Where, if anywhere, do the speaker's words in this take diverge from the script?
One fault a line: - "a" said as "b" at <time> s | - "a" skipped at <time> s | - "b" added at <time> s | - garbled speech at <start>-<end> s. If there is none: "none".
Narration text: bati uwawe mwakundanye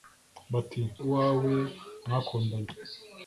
none